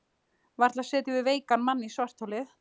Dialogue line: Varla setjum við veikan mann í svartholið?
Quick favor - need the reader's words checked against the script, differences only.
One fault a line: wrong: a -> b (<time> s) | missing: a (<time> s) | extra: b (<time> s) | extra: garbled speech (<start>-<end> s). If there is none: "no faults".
no faults